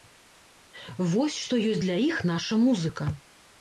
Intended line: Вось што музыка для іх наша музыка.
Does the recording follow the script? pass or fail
fail